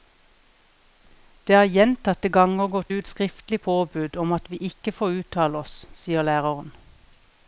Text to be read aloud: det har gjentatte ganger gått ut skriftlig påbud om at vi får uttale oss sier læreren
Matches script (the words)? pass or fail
fail